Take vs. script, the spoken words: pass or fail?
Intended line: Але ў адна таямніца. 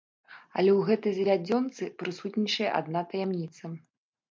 fail